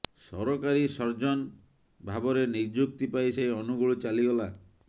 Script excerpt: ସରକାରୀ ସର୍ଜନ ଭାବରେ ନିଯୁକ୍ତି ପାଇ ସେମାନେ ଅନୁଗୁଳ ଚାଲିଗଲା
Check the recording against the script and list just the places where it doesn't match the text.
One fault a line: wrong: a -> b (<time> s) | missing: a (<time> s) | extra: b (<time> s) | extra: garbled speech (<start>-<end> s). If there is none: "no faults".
wrong: ସେମାନେ -> ସେ (3.4 s)